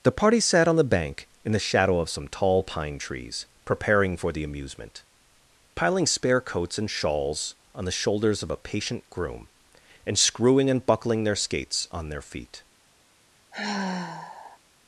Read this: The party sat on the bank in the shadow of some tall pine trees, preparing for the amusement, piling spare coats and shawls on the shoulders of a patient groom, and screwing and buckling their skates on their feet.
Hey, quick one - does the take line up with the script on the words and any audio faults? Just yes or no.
no